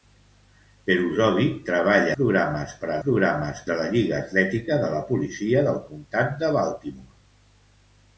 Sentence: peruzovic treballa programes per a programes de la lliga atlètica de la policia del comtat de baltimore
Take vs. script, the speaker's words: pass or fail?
pass